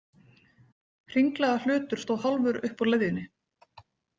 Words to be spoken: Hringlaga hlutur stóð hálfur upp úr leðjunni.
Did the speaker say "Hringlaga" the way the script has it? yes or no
yes